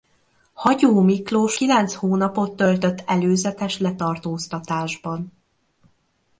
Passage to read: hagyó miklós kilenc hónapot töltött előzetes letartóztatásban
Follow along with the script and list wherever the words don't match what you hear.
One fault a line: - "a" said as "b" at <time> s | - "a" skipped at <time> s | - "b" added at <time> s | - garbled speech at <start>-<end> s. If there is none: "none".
none